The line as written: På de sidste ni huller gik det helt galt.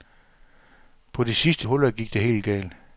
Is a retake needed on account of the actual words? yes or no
yes